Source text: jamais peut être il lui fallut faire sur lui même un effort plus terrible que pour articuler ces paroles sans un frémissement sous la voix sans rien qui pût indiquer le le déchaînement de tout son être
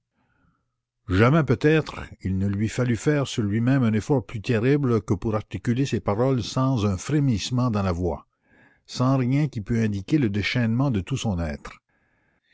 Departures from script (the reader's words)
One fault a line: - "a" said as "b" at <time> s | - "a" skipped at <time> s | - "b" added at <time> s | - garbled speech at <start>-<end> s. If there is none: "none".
- "ne" added at 2.4 s
- "sous" said as "dans" at 7.7 s
- "le" skipped at 10.3 s